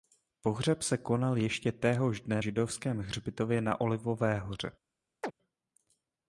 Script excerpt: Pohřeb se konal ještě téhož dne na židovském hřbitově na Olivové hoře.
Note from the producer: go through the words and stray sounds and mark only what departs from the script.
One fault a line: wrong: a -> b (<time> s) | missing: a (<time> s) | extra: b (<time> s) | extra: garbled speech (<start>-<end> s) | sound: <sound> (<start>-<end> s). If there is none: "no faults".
missing: na (2.4 s)
sound: chirp (5.2-5.3 s)